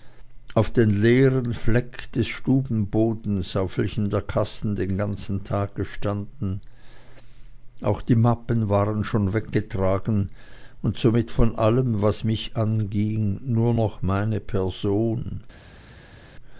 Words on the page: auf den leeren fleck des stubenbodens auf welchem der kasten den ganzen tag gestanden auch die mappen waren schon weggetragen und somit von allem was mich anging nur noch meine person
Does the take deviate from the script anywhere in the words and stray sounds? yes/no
no